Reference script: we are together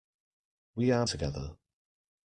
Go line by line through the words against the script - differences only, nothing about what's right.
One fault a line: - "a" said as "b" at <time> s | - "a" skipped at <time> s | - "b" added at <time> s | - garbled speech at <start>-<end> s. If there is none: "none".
none